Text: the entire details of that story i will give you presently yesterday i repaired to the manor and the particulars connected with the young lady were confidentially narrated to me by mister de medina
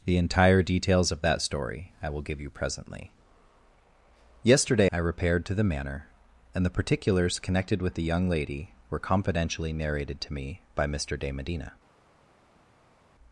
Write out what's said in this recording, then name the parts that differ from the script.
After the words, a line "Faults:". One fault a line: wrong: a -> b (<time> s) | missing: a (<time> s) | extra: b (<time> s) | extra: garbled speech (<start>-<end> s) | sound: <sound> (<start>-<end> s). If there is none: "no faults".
the entire details of that story i will give you presently yesterday i repaired to the manor and the particulars connected with the young lady were confidentially narrated to me by mister de medina
Faults:
no faults